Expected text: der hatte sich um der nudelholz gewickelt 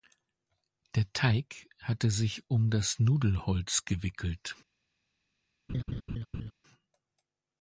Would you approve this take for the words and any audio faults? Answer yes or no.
no